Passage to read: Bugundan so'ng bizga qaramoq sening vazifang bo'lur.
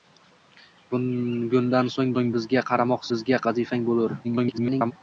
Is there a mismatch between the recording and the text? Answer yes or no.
yes